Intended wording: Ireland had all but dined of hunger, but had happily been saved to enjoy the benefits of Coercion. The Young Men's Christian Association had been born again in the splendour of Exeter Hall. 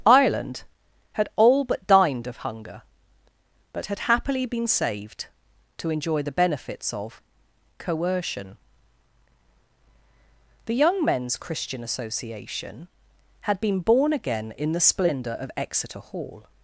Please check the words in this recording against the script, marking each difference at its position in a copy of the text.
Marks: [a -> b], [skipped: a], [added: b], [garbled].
Ireland had all but dined of hunger, but had happily been saved to enjoy the benefits of Coercion. The Young Men's Christian Association had been born again in the splendour of Exeter Hall.